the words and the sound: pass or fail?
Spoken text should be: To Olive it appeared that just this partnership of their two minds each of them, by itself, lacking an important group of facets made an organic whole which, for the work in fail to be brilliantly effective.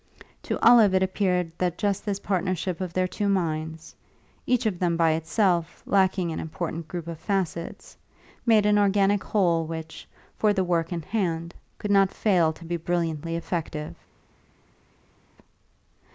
fail